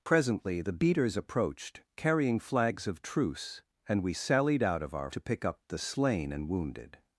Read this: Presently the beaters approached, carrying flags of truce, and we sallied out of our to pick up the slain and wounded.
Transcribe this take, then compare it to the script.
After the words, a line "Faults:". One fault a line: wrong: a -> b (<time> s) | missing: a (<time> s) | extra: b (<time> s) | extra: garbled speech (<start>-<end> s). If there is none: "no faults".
Presently the beaters approached, carrying flags of truce, and we sallied out of our to pick up the slain and wounded.
Faults:
no faults